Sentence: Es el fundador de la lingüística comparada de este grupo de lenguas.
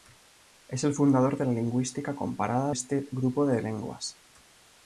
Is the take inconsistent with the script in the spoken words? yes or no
yes